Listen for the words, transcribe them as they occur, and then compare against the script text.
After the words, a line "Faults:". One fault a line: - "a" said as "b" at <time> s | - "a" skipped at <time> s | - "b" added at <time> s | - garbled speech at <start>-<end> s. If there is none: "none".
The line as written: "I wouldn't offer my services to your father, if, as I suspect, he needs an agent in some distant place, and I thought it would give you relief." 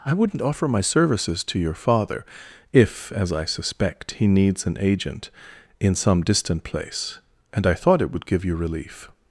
"I wouldn't offer my services to your father, if, as I suspect, he needs an agent in some distant place, and I thought it would give you relief."
Faults:
none